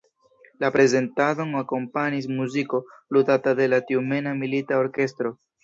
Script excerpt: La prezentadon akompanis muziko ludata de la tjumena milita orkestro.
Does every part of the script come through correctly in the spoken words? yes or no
yes